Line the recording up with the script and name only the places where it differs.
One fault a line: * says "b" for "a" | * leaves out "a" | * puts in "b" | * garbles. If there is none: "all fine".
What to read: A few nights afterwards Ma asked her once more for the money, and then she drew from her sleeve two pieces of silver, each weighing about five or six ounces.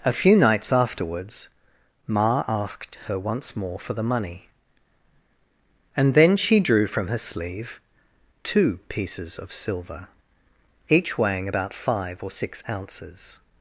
all fine